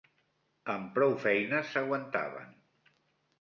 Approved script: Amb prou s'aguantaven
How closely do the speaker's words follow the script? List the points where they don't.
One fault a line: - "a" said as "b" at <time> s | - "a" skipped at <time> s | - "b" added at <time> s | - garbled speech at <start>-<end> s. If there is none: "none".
- "feines" added at 1.2 s